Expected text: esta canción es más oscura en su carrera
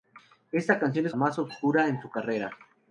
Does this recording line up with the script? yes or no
yes